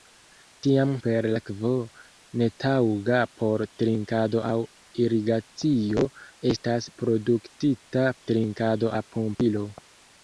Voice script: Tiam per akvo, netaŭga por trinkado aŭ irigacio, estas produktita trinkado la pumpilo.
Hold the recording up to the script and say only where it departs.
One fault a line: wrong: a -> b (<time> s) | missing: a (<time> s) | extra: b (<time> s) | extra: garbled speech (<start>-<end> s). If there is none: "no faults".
no faults